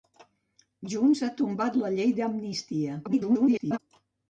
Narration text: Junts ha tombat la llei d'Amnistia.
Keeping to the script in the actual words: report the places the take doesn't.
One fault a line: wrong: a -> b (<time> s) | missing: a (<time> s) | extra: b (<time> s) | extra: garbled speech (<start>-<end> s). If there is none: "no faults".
extra: garbled speech (3.0-3.8 s)